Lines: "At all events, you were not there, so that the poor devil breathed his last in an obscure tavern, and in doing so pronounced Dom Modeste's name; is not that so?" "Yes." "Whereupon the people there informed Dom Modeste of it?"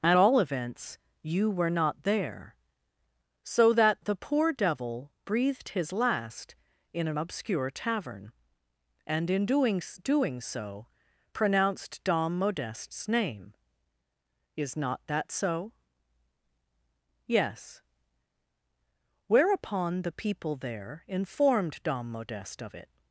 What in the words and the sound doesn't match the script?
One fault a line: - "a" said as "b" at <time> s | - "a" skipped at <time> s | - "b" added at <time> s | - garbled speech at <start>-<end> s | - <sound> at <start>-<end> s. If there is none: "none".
- "doing" added at 10.0 s